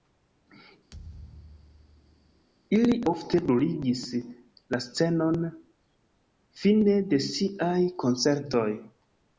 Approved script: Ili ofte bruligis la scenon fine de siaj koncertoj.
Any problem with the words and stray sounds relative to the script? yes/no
yes